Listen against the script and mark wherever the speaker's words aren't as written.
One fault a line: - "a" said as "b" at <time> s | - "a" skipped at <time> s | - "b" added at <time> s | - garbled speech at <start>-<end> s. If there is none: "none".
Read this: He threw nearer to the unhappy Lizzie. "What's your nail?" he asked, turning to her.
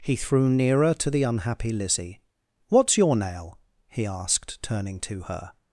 none